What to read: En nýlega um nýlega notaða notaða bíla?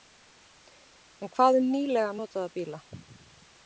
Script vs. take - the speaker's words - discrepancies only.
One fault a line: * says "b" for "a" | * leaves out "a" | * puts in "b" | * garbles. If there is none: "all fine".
* says "hvað" for "nýlega"
* leaves out "notaða"